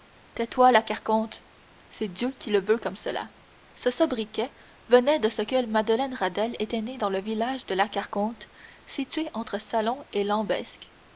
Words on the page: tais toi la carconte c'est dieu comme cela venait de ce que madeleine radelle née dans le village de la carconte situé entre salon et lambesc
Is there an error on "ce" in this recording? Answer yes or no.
no